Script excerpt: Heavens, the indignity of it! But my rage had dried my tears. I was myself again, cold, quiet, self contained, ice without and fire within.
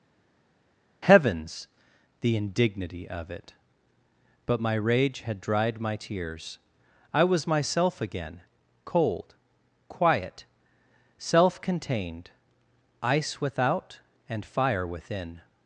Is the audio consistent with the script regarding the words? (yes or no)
yes